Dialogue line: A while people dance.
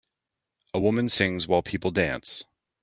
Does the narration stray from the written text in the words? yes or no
yes